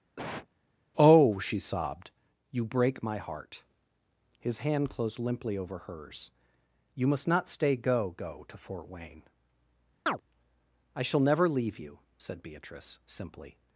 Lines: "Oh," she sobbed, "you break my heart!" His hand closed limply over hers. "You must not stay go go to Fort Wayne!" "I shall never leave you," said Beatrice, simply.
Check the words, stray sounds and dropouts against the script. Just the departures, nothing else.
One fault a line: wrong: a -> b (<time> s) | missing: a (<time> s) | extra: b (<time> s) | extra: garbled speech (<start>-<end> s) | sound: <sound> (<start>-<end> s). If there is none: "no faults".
sound: cough (0.2-0.5 s)
sound: chirp (10.1-10.2 s)